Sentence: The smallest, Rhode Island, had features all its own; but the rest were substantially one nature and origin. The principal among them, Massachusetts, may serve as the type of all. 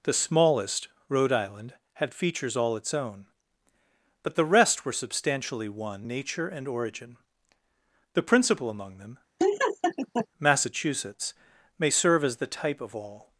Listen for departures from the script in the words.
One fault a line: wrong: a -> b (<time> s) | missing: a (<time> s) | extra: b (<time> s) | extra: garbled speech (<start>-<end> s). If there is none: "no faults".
no faults